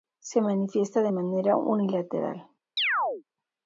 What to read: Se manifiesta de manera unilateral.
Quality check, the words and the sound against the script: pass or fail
fail